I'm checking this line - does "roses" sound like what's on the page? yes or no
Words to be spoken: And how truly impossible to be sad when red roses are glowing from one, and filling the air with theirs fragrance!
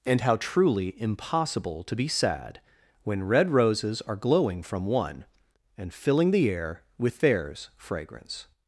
yes